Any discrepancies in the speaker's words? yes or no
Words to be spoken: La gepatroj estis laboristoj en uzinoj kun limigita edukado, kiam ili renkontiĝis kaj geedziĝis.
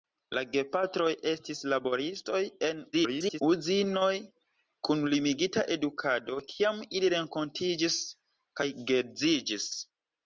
yes